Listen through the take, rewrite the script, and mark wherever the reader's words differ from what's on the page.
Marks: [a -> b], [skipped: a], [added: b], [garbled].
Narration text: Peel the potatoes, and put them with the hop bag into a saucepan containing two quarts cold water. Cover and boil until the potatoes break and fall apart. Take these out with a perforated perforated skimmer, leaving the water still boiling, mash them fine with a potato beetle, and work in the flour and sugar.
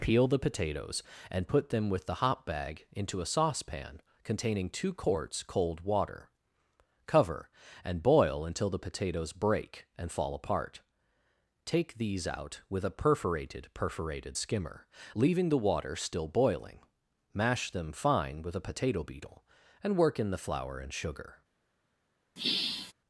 Peel the potatoes, and put them with the hop bag into a saucepan containing two quarts cold water. Cover and boil until the potatoes break and fall apart. Take these out with a perforated perforated skimmer, leaving the water still boiling, mash them fine with a potato beetle, and work in the flour and sugar.